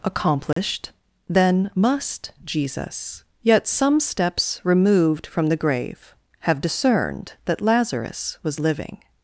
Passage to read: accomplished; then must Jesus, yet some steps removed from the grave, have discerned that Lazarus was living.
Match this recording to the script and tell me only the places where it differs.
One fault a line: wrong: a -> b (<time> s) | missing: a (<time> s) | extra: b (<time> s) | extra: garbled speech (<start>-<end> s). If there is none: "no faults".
no faults